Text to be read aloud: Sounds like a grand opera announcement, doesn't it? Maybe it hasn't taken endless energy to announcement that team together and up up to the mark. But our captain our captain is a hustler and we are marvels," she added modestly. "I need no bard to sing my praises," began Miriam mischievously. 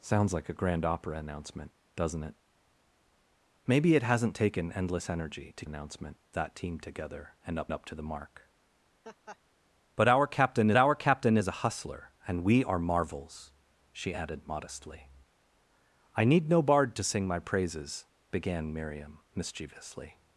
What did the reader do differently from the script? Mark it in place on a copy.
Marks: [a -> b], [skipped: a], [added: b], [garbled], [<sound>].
Sounds like a grand opera announcement, doesn't it? Maybe it hasn't taken endless energy to announcement that team together and up up to the mark. [laugh] But our captain our captain is a hustler and we are marvels," she added modestly. "I need no bard to sing my praises," began Miriam mischievously.